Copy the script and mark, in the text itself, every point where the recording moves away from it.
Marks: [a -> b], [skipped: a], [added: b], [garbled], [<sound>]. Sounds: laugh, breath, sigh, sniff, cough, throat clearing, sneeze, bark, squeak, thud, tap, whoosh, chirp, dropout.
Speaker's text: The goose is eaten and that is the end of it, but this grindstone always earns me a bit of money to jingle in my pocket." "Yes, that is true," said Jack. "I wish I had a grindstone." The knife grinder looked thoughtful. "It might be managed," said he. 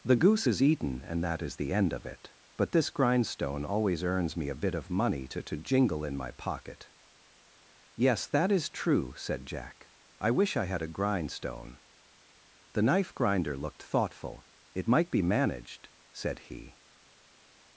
The goose is eaten and that is the end of it, but this grindstone always earns me a bit of money to [added: to] jingle in my pocket." "Yes, that is true," said Jack. "I wish I had a grindstone." The knife grinder looked thoughtful. "It might be managed," said he.